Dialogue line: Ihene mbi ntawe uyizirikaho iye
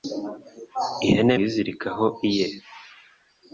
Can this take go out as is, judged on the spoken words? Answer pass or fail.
fail